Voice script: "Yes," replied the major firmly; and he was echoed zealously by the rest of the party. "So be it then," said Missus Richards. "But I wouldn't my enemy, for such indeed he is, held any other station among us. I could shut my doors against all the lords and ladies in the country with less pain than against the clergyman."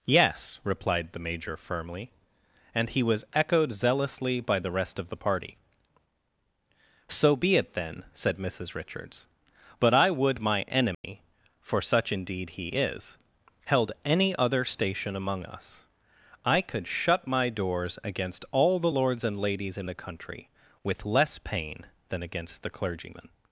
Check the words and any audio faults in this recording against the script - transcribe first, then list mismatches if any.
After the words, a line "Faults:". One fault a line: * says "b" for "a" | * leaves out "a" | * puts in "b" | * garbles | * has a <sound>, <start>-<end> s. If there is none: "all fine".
"Yes," replied the major firmly; and he was echoed zealously by the rest of the party. "So be it then," said Missus Richards. "But I would my enemy, for such indeed he is, held any other station among us. I could shut my doors against all the lords and ladies in the country with less pain than against the clergyman."
Faults:
* says "would" for "wouldn't"
* has a dropout, 10.9-11.0 s